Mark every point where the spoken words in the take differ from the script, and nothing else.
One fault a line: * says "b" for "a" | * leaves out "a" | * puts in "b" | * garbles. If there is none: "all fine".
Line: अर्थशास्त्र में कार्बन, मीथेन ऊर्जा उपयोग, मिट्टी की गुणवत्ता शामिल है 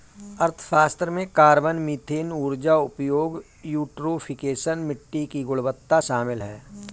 * puts in "यूट्रोफिकेशन"